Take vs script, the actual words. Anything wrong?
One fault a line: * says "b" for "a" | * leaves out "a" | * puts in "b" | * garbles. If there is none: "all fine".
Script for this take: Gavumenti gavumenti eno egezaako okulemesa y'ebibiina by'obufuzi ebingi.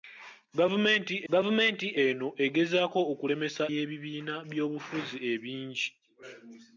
all fine